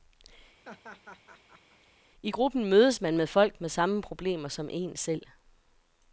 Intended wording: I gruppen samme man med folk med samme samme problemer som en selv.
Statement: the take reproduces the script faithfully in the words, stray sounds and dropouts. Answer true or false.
false